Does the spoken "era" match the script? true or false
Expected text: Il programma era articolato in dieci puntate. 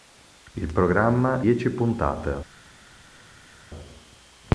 false